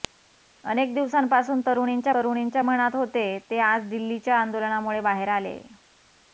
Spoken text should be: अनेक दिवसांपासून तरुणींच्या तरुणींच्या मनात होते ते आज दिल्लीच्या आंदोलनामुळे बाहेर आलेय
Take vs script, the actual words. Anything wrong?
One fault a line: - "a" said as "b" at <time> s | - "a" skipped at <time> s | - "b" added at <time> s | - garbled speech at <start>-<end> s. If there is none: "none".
none